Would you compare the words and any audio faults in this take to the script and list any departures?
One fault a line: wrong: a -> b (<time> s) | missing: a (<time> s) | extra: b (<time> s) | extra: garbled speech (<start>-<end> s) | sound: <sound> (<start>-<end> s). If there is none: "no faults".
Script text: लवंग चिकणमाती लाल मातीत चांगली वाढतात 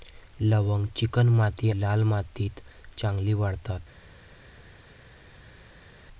no faults